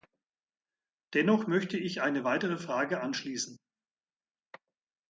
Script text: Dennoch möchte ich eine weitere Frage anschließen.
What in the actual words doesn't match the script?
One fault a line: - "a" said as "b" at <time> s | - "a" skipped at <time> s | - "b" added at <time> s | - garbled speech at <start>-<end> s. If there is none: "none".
none